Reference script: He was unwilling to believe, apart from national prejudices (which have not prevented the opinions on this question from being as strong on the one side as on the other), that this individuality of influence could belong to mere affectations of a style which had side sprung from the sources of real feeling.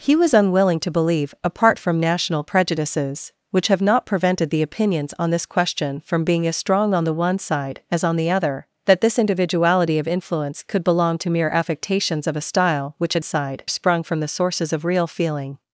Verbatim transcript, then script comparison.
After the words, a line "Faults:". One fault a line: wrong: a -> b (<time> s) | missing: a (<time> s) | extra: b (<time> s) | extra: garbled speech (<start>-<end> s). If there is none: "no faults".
He was unwilling to believe, apart from national prejudices (which have not prevented the opinions on this question from being as strong on the one side as on the other), that this individuality of influence could belong to mere affectations of a style which had side sprung from the sources of real feeling.
Faults:
no faults